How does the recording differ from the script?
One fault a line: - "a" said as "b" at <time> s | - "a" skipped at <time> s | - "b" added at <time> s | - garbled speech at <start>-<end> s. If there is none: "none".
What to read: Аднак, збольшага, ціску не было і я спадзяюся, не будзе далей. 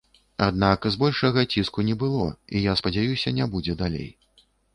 none